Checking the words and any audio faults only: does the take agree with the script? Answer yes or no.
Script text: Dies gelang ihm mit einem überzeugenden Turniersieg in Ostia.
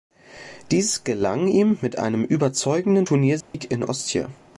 no